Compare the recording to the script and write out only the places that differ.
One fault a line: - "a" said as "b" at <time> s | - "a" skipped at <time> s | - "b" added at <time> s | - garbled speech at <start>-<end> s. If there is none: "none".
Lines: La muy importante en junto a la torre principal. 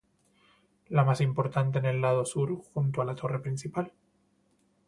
- "muy" said as "más" at 1.0 s
- "el lado sur" added at 1.9 s